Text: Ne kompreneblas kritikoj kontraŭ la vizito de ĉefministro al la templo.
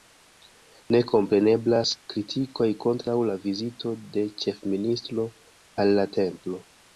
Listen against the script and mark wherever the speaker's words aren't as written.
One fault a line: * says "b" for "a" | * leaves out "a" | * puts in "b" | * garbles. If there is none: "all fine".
all fine